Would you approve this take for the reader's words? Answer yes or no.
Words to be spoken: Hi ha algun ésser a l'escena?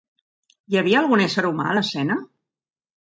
no